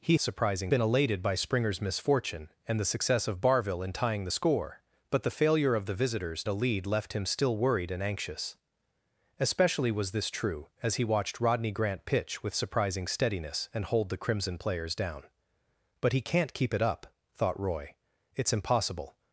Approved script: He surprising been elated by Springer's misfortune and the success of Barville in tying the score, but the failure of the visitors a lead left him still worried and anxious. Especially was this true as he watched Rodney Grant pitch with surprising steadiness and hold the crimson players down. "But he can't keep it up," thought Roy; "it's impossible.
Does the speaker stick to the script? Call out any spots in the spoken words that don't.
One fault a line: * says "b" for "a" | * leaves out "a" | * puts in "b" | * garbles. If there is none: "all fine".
all fine